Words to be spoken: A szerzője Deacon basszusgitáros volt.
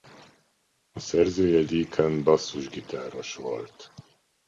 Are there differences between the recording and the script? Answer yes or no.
no